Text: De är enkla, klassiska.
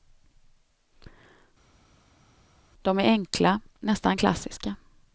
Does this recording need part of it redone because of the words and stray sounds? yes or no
yes